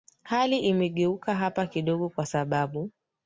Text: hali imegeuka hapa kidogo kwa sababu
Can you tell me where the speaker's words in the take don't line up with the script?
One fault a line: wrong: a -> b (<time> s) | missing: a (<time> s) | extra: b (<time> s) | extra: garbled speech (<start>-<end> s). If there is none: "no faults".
no faults